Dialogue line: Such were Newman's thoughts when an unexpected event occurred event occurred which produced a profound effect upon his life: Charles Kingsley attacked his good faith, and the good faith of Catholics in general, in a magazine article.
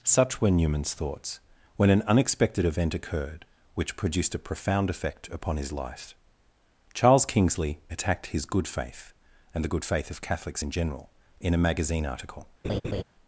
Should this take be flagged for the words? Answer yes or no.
yes